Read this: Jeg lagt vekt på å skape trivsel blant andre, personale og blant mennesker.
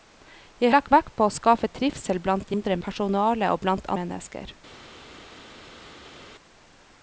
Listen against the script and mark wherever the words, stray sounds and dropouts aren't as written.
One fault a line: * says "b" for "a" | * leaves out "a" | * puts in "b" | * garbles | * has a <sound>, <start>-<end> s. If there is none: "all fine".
all fine